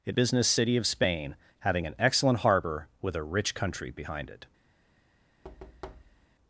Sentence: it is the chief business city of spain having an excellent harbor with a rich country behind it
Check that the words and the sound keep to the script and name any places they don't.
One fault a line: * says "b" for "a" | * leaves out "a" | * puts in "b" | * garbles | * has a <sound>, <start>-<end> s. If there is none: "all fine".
* leaves out "is the chief"
* has a thud, 5.4-6.3 s